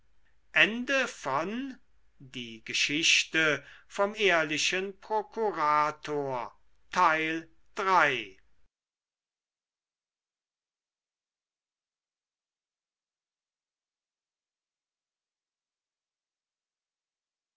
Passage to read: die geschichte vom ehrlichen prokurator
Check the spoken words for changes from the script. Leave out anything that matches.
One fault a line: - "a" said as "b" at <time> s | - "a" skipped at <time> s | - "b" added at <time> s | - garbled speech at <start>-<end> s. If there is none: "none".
none